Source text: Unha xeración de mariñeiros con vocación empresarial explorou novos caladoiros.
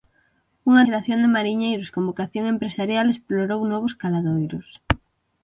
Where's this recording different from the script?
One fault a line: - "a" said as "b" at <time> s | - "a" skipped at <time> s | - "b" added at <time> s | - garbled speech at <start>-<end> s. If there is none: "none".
none